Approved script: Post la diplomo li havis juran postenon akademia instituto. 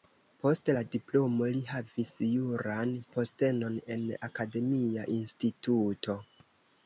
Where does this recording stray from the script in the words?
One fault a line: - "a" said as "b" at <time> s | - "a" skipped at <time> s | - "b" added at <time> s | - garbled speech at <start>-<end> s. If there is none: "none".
- "en" added at 4.0 s